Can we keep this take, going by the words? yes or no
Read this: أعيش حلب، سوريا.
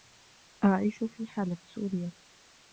no